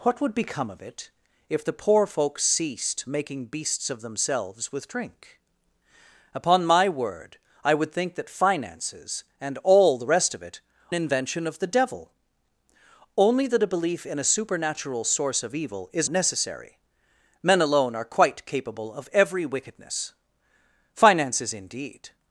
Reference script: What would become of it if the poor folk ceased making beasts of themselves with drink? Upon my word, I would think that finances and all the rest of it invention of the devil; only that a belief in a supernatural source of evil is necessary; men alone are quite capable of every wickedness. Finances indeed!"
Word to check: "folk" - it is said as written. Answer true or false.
true